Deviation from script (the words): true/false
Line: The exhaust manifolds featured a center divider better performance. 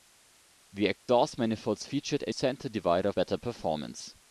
false